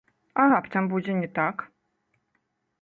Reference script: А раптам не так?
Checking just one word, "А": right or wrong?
right